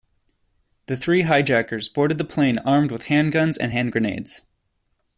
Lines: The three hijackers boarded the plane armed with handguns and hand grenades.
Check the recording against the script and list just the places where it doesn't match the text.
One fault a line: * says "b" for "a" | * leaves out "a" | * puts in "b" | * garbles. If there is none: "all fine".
all fine